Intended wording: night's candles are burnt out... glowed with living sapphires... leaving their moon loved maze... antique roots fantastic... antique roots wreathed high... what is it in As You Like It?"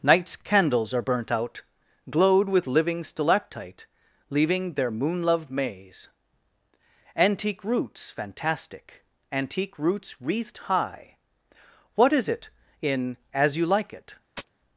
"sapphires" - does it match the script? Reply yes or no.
no